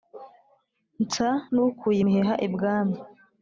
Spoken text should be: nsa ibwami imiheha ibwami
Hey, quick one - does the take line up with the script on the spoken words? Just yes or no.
no